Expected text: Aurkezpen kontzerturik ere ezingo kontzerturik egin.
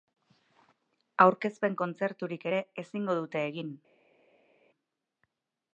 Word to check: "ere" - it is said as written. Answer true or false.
true